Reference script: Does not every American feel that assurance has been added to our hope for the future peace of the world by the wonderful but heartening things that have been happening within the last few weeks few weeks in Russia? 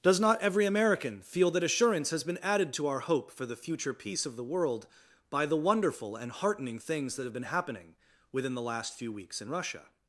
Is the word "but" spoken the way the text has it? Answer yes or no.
no